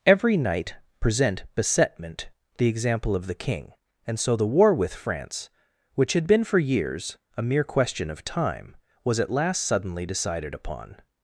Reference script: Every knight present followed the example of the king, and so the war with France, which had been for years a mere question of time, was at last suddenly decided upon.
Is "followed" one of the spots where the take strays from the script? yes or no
yes